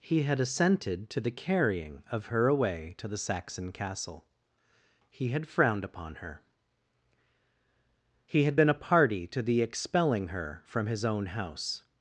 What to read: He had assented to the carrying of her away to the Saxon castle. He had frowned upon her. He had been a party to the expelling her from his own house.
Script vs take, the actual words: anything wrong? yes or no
no